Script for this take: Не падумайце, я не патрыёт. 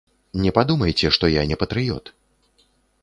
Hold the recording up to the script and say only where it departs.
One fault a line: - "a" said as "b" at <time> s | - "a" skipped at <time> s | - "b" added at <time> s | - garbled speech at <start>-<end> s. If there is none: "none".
- "што" added at 1.2 s